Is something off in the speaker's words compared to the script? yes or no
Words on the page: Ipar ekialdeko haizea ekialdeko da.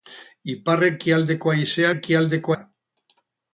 no